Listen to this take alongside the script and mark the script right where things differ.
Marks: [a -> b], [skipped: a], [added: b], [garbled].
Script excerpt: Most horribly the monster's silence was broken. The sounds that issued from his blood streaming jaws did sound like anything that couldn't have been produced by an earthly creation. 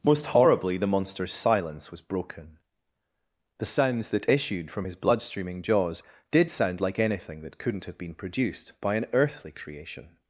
Most horribly the monster's silence was broken. The sounds that issued from his blood streaming jaws did sound like anything that couldn't have been produced by an earthly creation.